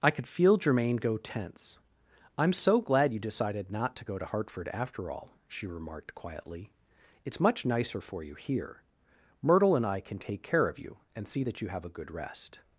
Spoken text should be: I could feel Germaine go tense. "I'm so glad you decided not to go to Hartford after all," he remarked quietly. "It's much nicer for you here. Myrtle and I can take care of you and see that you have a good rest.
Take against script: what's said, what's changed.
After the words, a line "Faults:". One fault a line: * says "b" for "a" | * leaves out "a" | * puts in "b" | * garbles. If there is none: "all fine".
I could feel Germaine go tense. "I'm so glad you decided not to go to Hartford after all," she remarked quietly. "It's much nicer for you here. Myrtle and I can take care of you and see that you have a good rest.
Faults:
* says "she" for "he"